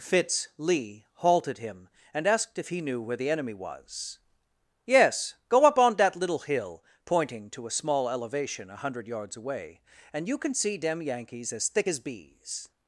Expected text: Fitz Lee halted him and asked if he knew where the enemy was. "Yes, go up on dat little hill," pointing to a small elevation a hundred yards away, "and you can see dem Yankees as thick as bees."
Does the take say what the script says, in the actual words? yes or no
yes